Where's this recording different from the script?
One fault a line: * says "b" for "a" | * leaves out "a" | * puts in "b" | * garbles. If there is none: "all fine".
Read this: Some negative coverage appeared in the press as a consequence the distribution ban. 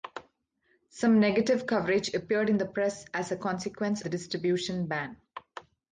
all fine